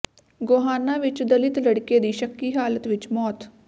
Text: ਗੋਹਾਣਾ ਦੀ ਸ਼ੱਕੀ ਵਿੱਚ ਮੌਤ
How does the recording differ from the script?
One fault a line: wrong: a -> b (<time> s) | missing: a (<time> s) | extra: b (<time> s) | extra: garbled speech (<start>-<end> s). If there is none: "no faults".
extra: ਵਿੱਚ ਦਲਿਤ ਲੜਕੇ (1.0 s)
extra: ਹਾਲਤ (2.5 s)